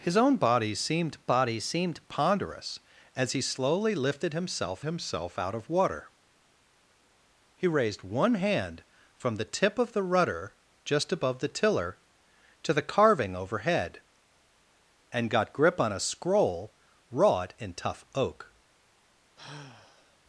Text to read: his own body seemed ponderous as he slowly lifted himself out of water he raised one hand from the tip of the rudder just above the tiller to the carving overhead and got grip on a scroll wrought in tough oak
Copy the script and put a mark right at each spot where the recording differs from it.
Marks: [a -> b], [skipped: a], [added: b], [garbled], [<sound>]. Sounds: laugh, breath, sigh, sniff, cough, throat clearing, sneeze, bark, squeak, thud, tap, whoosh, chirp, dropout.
his own body seemed [added: body seemed] ponderous as he slowly lifted himself [added: himself] out of water he raised one hand from the tip of the rudder just above the tiller to the carving overhead and got grip on a scroll wrought in tough oak [sigh]